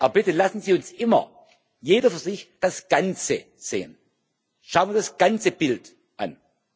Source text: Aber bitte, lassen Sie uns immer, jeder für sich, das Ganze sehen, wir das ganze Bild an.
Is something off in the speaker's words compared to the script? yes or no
yes